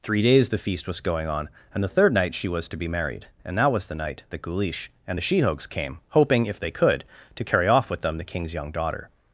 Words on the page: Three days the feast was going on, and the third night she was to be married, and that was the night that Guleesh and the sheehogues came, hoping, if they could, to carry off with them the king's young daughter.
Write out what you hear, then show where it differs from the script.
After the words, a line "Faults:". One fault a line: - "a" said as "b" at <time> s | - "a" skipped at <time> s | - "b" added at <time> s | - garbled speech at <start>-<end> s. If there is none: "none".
Three days the feast was going on, and the third night she was to be married, and that was the night that Guleesh and the sheehogues came, hoping, if they could, to carry off with them the king's young daughter.
Faults:
none